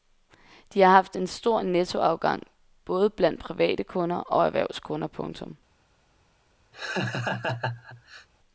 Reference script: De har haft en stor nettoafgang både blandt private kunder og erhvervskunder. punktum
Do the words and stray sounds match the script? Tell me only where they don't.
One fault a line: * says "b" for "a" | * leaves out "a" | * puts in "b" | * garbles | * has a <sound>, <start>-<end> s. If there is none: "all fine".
* has a laugh, 6.7-8.3 s